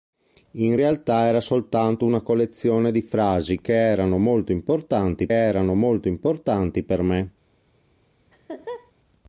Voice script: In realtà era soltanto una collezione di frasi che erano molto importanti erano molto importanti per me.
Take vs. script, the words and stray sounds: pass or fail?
fail